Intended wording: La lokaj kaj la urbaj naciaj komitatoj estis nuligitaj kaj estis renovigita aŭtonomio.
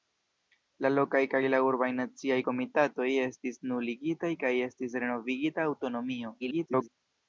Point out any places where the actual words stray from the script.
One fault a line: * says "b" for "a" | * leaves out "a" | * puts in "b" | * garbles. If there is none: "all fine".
* garbles